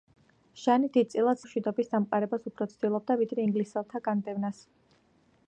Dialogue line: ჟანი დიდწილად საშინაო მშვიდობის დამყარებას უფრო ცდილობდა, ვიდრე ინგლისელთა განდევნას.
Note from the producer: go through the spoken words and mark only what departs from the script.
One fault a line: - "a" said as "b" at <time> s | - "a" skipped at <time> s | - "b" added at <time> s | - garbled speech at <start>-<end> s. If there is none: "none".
- "საშინაო" skipped at 1.4 s